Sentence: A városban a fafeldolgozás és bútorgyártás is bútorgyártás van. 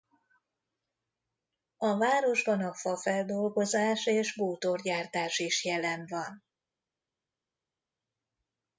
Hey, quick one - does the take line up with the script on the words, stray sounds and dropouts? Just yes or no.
no